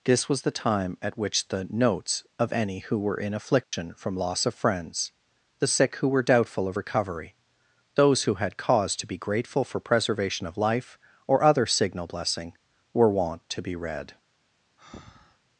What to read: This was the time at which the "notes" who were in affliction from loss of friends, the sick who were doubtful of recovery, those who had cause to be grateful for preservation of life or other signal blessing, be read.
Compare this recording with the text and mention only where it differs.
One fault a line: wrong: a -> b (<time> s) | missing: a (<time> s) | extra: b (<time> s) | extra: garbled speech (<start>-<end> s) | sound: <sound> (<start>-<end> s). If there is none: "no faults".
extra: of any (2.4 s)
sound: dropout (3.6-3.7 s)
extra: were wont to (12.9 s)
sound: breath (14.8-15.4 s)